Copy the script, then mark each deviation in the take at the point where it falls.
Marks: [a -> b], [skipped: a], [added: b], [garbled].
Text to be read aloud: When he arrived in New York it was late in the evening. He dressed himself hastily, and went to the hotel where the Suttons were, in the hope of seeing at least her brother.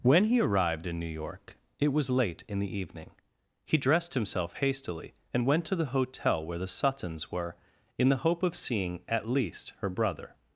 When he arrived in New York it was late in the evening. He dressed himself hastily, and went to the hotel where the Suttons were, in the hope of seeing at least her brother.